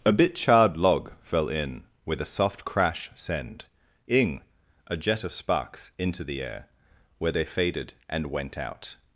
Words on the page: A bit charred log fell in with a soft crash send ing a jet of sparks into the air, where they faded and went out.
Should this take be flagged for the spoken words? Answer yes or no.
no